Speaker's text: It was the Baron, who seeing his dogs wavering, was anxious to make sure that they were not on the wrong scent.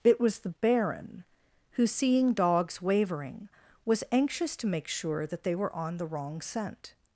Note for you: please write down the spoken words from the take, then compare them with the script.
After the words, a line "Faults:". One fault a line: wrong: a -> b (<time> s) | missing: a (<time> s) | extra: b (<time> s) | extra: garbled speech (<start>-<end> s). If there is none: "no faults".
It was the Baron, who seeing dogs wavering, was anxious to make sure that they were on the wrong scent.
Faults:
missing: his (2.3 s)
missing: not (5.7 s)